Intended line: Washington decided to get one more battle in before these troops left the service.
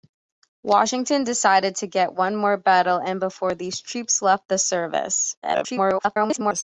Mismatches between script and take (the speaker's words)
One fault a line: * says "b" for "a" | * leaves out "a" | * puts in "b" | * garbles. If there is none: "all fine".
* garbles